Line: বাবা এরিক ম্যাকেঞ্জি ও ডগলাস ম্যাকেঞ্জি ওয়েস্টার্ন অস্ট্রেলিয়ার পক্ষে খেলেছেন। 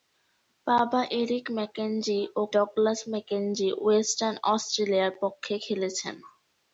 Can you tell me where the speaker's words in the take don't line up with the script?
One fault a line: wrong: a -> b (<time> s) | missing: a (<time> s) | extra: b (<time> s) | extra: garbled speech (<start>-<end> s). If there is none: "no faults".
no faults